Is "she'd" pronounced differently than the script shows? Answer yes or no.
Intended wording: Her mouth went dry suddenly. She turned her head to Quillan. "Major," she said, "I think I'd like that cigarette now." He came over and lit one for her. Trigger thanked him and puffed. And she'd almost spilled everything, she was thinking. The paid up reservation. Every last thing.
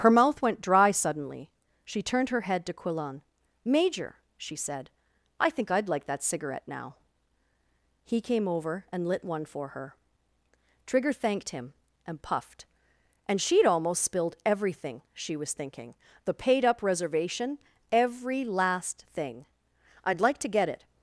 no